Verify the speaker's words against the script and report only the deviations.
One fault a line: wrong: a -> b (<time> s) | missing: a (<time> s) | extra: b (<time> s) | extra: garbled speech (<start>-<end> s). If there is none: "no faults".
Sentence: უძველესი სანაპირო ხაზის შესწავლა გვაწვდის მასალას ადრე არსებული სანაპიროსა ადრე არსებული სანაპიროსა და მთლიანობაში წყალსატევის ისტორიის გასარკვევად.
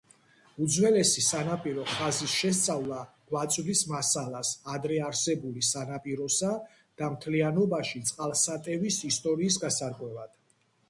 missing: ადრე არსებული სანაპიროსა (6.5 s)